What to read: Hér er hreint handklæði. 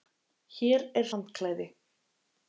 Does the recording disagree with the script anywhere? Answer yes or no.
yes